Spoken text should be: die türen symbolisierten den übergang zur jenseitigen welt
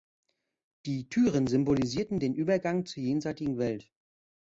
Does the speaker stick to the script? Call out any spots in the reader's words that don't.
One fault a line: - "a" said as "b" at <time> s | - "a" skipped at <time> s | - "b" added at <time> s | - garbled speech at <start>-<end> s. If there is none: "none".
none